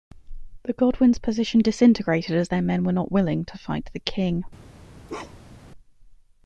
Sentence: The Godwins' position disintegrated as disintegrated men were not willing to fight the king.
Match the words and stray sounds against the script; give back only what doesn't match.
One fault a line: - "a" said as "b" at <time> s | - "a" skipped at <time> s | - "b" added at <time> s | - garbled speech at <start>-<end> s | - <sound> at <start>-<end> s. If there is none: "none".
- "disintegrated" said as "their" at 2.5 s
- bark at 5.1-5.7 s